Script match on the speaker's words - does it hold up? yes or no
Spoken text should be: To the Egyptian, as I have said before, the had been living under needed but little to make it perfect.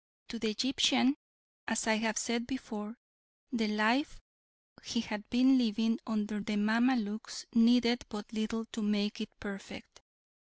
no